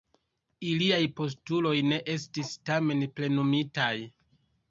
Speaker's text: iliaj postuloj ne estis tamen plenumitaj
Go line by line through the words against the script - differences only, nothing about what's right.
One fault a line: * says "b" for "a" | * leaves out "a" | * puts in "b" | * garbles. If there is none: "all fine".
all fine